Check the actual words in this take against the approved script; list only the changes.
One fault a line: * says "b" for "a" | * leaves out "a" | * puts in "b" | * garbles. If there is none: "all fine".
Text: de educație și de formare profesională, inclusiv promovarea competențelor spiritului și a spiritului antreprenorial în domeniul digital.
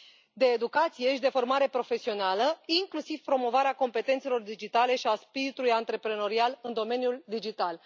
* says "digitale" for "spiritului"